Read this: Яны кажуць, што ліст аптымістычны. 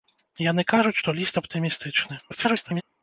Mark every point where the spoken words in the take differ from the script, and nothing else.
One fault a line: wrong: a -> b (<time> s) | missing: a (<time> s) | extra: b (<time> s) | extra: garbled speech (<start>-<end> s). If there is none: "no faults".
extra: garbled speech (2.3-2.8 s)